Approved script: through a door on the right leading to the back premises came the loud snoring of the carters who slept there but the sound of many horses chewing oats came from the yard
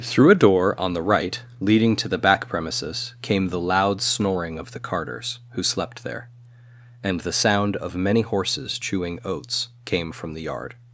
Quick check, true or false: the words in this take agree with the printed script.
false